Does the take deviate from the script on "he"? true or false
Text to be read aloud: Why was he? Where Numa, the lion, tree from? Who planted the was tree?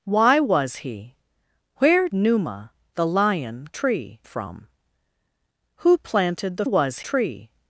false